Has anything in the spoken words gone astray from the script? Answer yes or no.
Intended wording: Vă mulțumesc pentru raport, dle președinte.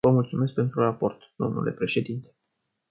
no